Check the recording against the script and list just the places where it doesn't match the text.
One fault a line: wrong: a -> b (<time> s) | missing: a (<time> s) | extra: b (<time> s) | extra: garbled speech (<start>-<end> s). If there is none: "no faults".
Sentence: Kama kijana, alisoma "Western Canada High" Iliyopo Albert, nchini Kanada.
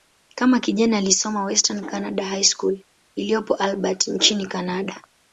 extra: School (2.4 s)